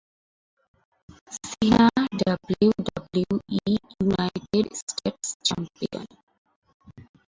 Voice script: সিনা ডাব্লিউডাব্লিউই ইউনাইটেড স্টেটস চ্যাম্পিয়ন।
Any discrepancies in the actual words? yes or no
no